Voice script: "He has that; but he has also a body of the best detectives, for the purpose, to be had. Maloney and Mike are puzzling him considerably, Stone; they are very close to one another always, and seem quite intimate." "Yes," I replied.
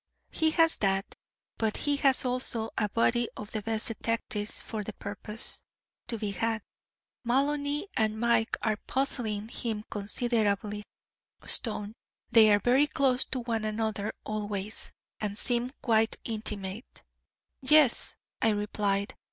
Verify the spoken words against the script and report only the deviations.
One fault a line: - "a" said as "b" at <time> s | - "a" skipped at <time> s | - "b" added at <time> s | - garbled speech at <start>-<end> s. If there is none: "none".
none